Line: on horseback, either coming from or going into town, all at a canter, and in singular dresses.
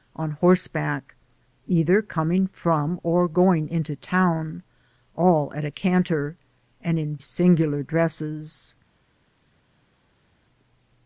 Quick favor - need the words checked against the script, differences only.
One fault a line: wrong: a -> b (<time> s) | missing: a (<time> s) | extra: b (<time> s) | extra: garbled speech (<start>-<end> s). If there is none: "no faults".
no faults